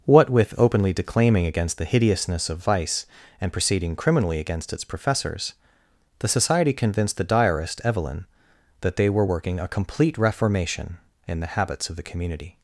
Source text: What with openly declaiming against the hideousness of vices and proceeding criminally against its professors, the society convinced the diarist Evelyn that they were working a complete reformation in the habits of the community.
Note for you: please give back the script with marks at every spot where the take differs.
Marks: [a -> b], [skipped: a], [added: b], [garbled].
What with openly declaiming against the hideousness of [vices -> vice] and proceeding criminally against its professors, the society convinced the diarist Evelyn that they were working a complete reformation in the habits of the community.